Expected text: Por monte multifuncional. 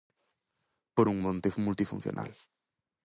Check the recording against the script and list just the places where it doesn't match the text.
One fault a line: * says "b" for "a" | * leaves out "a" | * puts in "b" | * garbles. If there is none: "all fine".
* puts in "un"